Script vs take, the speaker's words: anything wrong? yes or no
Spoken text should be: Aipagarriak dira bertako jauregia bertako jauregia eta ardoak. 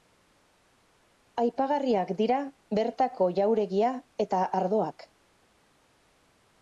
yes